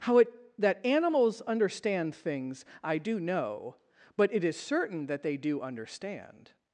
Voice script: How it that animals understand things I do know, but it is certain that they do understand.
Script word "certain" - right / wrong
right